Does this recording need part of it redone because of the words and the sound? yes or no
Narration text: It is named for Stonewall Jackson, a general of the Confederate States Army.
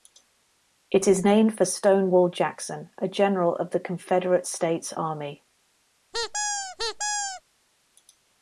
yes